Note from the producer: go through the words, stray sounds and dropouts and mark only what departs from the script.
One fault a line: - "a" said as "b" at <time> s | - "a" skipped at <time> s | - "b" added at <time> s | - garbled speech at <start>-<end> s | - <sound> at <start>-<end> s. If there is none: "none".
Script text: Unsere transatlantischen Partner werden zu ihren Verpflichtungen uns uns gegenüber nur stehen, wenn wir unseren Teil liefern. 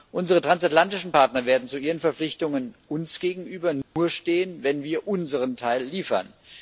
- "uns" skipped at 3.2 s
- dropout at 3.8-4.0 s